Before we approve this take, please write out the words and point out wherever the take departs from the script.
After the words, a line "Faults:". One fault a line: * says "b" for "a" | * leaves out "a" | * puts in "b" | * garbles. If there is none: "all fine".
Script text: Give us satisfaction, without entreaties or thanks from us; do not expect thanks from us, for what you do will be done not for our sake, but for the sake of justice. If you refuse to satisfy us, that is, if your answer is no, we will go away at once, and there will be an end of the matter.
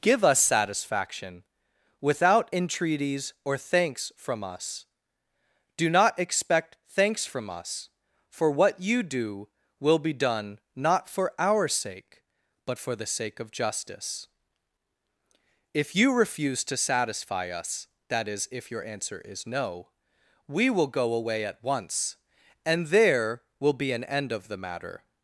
Give us satisfaction, without entreaties or thanks from us; do not expect thanks from us, for what you do will be done not for our sake, but for the sake of justice. If you refuse to satisfy us, that is, if your answer is no, we will go away at once, and there will be an end of the matter.
Faults:
all fine